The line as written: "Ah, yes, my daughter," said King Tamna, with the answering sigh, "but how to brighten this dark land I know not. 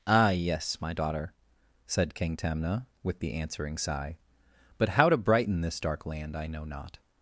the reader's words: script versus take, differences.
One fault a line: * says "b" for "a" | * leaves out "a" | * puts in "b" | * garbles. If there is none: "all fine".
all fine